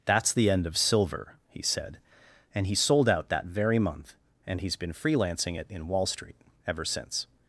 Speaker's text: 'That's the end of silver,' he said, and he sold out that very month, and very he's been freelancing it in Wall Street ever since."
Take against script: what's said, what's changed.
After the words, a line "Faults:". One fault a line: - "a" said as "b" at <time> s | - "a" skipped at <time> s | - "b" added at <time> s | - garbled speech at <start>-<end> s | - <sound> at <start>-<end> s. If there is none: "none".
'That's the end of silver,' he said, and he sold out that very month, and he's been freelancing it in Wall Street ever since."
Faults:
- "very" skipped at 4.6 s